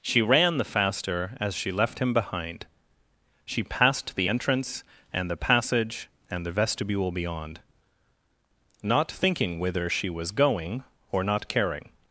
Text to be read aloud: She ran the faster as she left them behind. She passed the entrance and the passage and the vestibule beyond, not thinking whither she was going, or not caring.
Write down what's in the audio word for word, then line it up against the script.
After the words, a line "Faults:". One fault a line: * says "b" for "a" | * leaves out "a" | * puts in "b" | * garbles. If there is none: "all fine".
She ran the faster as she left him behind. She passed the entrance and the passage and the vestibule beyond, not thinking whither she was going, or not caring.
Faults:
* says "him" for "them"